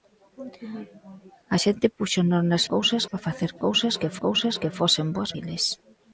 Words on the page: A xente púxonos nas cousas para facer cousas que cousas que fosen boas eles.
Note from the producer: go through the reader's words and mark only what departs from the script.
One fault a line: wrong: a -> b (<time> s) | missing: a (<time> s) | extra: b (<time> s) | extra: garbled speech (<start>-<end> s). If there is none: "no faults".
no faults